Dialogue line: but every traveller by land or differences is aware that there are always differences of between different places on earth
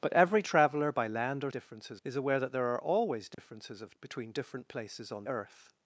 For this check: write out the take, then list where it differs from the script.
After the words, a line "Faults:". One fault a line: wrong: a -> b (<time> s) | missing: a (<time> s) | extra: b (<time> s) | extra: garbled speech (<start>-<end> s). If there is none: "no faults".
but every traveller by land or differences is aware that there are always differences of between different places on earth
Faults:
no faults